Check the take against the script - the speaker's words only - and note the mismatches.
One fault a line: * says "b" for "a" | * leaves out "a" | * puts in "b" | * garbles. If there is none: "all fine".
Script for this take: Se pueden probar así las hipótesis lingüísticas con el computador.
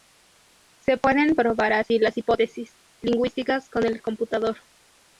all fine